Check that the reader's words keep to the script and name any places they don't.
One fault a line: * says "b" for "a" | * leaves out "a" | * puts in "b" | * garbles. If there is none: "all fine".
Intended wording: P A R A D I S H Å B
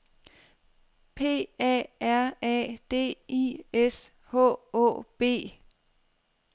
all fine